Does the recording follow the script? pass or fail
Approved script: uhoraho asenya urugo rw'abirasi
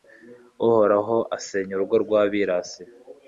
pass